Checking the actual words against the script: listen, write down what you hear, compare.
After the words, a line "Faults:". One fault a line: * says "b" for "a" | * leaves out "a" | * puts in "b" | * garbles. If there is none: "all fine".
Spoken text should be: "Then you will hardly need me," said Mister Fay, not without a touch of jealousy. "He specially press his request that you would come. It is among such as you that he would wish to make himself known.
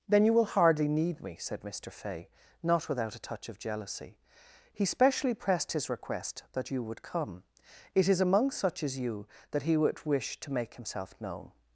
"Then you will hardly need me," said Mister Fay, not without a touch of jealousy. "He specially pressed his request that you would come. It is among such as you that he would wish to make himself known.
Faults:
* says "pressed" for "press"